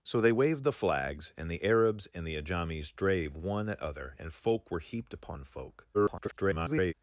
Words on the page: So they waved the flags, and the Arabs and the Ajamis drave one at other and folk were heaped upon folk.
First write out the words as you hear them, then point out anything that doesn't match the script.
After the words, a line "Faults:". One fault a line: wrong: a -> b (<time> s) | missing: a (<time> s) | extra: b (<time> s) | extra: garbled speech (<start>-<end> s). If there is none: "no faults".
So they waved the flags, and the Arabs and the Ajamis drave one at other and folk were heaped upon folk. [garbled]
Faults:
extra: garbled speech (5.9-6.9 s)